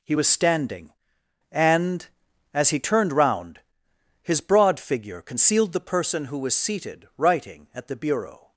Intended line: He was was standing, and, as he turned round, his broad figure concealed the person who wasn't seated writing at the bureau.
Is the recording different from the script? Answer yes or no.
yes